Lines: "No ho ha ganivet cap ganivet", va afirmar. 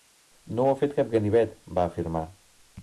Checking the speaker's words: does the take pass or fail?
fail